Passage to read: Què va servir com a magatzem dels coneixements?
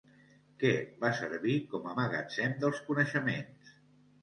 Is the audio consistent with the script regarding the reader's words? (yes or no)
yes